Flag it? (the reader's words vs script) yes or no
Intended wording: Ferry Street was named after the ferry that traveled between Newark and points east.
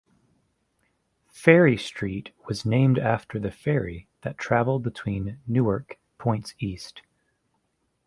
yes